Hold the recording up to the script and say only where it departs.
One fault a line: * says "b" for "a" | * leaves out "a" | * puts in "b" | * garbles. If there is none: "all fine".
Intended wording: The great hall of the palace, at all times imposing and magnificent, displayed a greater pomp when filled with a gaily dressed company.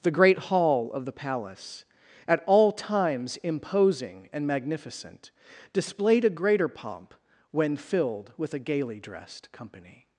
all fine